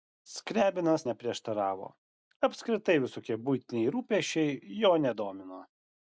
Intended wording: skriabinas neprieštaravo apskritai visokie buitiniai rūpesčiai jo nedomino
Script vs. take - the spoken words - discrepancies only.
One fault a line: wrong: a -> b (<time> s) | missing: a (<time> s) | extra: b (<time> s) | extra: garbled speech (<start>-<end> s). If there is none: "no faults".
no faults